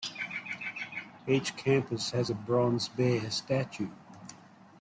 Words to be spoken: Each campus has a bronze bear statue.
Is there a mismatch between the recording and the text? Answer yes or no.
no